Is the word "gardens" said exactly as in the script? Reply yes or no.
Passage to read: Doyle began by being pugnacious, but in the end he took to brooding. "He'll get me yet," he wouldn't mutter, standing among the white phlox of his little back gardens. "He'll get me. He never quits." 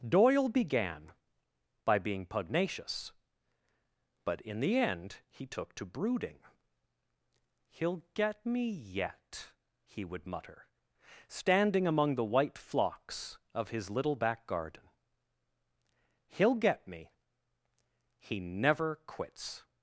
no